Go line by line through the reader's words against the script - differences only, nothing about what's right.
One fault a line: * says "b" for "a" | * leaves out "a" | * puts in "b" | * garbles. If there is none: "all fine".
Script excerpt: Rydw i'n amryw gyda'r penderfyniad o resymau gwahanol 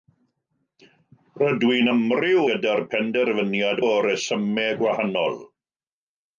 all fine